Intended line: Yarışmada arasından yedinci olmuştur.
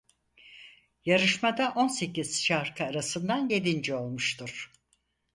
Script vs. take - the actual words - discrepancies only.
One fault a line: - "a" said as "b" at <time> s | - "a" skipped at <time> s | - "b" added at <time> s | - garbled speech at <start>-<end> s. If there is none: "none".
- "on sekiz şarkı" added at 1.7 s